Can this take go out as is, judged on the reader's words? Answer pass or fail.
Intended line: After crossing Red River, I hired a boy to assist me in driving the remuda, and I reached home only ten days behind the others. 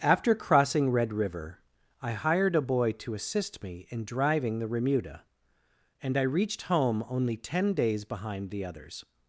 pass